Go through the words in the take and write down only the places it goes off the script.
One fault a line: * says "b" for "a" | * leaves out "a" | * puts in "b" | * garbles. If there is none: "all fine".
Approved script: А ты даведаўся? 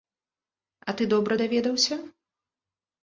* puts in "добра"